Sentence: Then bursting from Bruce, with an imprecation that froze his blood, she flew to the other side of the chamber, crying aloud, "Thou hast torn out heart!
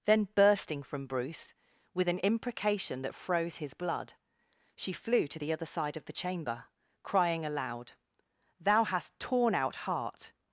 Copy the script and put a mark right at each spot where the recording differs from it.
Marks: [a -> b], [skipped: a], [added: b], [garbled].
Then bursting from Bruce, with an imprecation that froze his blood, she flew to the other side of the chamber, crying aloud, "Thou hast torn out heart!